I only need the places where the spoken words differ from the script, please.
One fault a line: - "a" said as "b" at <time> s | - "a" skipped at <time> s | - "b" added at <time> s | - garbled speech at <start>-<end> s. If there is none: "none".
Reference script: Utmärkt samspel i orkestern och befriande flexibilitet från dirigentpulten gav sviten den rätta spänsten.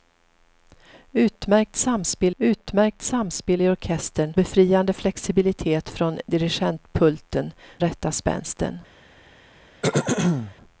- "utmärkt samspel" added at 2.4 s
- "och" skipped at 4.3 s
- "gav sviten den" skipped at 7.5 s